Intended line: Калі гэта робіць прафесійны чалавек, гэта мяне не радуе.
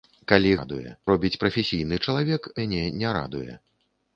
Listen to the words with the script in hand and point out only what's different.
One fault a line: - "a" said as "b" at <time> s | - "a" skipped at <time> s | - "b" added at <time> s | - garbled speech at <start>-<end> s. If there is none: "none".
- "гэта" said as "радуе" at 0.6 s
- "гэта" skipped at 2.5 s